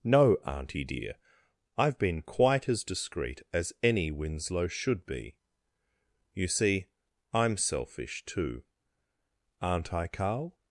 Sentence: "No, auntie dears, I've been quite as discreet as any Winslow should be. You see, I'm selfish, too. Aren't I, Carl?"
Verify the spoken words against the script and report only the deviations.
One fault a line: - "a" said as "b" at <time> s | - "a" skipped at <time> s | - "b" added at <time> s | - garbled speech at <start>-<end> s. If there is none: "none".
- "dears" said as "dear" at 0.8 s